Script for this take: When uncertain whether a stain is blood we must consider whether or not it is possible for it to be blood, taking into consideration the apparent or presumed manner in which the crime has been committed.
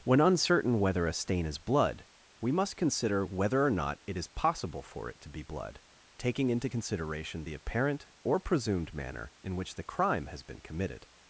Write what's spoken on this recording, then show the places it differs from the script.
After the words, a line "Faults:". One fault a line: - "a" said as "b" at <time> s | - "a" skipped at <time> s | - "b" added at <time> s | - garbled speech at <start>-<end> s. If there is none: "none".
When uncertain whether a stain is blood we must consider whether or not it is possible for it to be blood, taking into consideration the apparent or presumed manner in which the crime has been committed.
Faults:
none